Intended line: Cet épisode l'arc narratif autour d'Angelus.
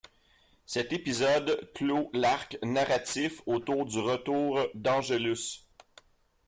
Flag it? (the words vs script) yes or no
yes